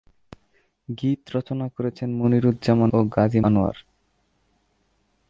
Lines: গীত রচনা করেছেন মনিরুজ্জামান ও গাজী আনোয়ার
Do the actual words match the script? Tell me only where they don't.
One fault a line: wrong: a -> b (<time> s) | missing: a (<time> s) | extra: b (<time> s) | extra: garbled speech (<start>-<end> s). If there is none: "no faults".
no faults